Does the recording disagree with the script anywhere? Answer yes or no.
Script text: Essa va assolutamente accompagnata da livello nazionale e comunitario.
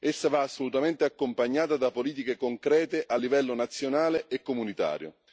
yes